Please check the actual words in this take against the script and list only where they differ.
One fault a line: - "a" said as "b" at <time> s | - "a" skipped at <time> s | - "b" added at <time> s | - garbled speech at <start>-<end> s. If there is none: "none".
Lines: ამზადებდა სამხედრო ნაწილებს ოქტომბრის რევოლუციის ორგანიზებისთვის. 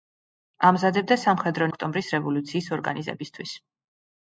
- "ნაწილებს" skipped at 1.7 s